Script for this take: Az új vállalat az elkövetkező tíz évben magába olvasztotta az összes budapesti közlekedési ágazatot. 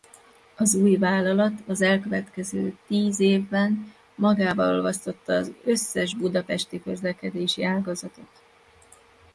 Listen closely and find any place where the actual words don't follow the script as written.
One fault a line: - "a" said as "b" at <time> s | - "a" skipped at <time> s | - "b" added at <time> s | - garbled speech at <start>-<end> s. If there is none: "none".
none